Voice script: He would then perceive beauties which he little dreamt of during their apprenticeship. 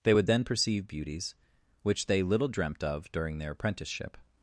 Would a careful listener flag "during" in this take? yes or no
no